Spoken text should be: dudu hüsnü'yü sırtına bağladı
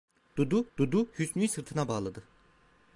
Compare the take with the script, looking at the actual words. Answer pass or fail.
fail